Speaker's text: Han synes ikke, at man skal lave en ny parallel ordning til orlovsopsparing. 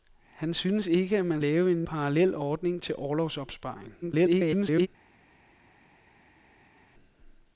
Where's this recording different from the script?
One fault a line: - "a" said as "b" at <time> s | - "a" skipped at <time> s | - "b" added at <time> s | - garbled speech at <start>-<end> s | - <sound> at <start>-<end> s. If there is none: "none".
- "skal" skipped at 1.4 s
- "ny" skipped at 1.9 s
- garbled speech at 4.0-4.9 s